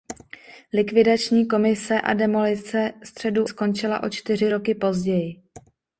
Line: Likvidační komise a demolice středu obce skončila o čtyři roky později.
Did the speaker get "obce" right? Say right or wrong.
wrong